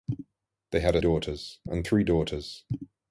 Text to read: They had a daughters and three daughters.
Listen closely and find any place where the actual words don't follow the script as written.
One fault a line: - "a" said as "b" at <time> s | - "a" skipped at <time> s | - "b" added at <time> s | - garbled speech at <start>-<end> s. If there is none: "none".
none